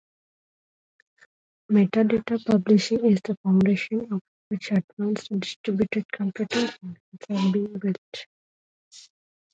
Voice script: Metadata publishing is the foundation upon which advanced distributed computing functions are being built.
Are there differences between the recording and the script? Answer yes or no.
no